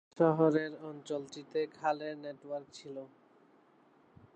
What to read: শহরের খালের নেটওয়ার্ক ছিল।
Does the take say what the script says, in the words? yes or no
no